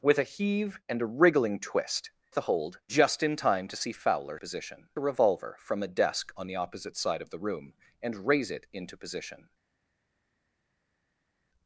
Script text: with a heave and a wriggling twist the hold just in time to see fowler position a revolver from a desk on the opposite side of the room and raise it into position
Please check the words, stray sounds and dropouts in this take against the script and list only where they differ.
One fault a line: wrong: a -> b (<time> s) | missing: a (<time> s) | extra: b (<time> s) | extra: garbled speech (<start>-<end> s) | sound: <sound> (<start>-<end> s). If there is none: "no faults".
no faults